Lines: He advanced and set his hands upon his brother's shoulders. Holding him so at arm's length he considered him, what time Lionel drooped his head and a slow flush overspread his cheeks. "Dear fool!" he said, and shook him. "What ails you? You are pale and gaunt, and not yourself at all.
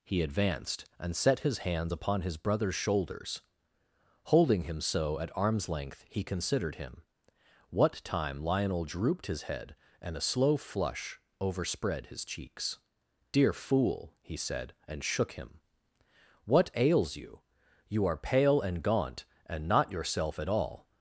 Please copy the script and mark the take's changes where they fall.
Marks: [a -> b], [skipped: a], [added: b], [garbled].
He advanced and set his hands upon his brother's shoulders. Holding him so at arm's length he considered him, what time Lionel drooped his head and a slow flush overspread his cheeks. "Dear fool!" he said, and shook him. "What ails you? You are pale and gaunt, and not yourself at all.